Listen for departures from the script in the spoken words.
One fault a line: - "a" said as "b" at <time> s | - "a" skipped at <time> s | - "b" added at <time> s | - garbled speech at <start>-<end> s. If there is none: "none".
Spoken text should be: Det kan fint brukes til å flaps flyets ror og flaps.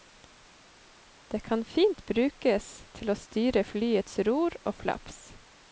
- "flaps" said as "styre" at 3.2 s